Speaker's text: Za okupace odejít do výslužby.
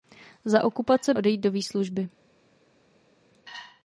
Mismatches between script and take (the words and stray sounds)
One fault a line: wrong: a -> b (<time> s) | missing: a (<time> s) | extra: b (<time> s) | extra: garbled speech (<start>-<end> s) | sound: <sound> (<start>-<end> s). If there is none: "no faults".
no faults